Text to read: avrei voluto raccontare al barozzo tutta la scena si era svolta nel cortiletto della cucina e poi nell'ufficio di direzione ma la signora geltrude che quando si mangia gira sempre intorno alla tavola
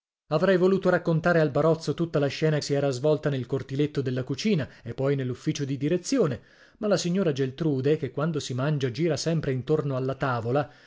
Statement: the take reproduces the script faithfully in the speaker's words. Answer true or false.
true